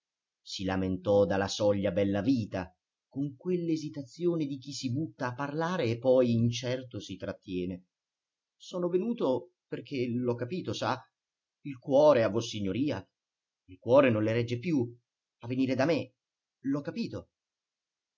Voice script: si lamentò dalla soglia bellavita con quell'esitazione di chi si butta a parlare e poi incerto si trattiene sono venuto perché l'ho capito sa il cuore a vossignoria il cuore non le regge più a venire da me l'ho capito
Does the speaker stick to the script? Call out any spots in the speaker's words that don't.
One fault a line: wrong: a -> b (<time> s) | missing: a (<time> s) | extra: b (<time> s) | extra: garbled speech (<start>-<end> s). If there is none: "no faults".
no faults